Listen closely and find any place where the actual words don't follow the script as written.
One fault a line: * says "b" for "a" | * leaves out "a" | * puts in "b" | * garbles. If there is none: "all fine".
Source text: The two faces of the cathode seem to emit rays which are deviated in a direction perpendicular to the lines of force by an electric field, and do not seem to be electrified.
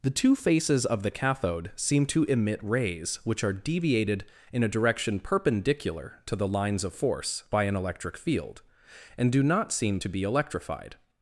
all fine